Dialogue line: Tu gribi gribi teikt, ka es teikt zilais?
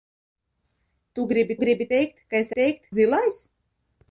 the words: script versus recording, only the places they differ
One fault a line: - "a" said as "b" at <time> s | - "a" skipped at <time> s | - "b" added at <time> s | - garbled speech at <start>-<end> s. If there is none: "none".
none